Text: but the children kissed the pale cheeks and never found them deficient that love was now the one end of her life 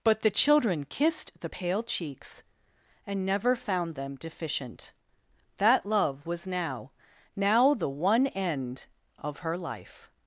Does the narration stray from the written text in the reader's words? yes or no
yes